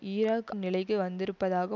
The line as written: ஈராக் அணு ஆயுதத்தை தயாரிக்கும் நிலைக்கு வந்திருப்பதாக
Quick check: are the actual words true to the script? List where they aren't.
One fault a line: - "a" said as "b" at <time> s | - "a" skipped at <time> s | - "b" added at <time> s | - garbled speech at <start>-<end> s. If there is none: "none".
- "அணு ஆயுதத்தை தயாரிக்கும்" skipped at 0.5 s